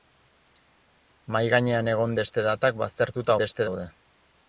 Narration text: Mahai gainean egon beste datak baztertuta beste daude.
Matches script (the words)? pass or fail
pass